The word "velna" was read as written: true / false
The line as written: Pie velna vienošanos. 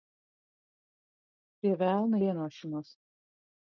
true